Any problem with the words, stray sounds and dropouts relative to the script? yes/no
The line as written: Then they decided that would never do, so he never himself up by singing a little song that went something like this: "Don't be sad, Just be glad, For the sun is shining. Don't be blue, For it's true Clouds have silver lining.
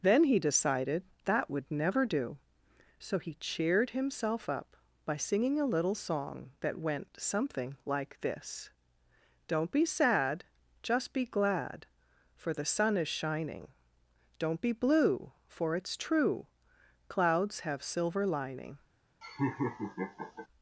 yes